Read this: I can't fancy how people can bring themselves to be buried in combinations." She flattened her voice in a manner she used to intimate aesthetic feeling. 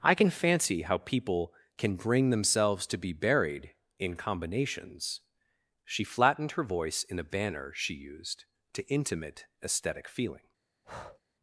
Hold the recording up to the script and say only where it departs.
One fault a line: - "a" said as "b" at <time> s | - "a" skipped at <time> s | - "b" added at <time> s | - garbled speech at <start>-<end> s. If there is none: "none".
- "can't" said as "can" at 0.1 s
- "manner" said as "banner" at 7.2 s